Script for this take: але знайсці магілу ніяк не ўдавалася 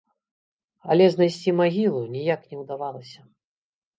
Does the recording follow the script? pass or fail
pass